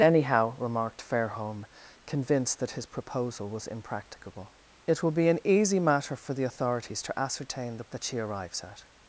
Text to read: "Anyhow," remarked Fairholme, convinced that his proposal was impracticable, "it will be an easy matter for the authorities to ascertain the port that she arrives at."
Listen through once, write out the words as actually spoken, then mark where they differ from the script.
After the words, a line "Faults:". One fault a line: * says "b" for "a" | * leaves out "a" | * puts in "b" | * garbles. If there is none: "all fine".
"Anyhow," remarked Fairholme, convinced that his proposal was impracticable, "it will be an easy matter for the authorities to ascertain the that she arrives at."
Faults:
* leaves out "port"